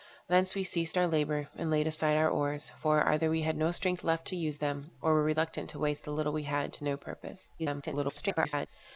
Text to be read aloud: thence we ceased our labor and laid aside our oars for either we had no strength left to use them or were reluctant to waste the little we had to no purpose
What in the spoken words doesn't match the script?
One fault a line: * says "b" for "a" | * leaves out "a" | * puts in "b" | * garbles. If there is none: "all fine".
* garbles